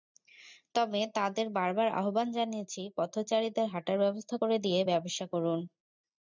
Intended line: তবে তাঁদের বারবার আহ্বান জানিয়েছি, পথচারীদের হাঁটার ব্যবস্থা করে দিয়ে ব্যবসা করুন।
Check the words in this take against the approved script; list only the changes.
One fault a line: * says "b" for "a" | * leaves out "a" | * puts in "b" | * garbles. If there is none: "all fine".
all fine